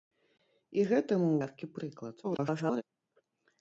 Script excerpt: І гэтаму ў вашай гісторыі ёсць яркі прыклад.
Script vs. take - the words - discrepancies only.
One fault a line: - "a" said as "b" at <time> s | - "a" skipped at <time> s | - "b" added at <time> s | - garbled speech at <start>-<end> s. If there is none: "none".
- "вашай гісторыі ёсць" skipped at 1.4 s
- garbled speech at 2.2-2.8 s